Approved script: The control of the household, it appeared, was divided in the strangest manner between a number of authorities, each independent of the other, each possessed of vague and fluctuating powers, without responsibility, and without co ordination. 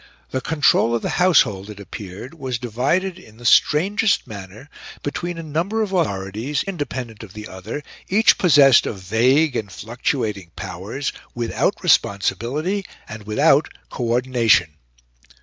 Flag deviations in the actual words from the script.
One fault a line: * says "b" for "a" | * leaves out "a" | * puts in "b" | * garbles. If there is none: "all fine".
* leaves out "each"